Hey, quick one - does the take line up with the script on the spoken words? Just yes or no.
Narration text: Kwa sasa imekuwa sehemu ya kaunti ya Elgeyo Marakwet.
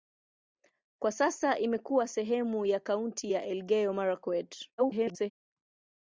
no